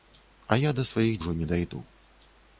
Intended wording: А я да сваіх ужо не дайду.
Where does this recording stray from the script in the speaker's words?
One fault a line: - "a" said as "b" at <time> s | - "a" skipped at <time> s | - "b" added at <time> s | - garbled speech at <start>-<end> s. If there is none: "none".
none